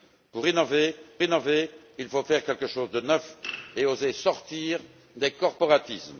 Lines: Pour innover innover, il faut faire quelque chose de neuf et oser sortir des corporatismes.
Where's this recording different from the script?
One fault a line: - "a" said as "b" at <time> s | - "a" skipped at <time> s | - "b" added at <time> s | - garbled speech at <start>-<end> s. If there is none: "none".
none